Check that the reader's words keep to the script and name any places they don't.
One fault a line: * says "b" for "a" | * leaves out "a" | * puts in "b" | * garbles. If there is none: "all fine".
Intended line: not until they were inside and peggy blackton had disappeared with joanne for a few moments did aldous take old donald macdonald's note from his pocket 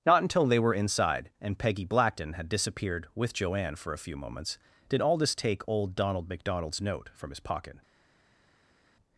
all fine